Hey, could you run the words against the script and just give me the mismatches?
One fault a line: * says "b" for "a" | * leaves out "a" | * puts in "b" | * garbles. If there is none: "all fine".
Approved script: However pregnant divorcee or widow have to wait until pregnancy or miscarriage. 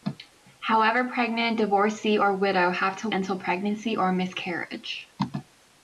* leaves out "wait"